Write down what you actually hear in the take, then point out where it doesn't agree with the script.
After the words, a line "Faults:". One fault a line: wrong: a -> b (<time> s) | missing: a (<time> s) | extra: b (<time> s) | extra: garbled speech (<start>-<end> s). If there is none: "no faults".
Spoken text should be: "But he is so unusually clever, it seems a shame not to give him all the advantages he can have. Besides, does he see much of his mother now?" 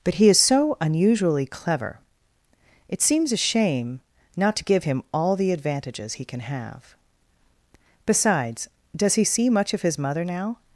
"But he is so unusually clever, it seems a shame not to give him all the advantages he can have. Besides, does he see much of his mother now?"
Faults:
no faults